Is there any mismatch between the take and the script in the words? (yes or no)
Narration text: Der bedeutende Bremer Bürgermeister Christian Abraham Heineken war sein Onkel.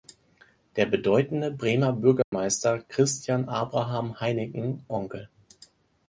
yes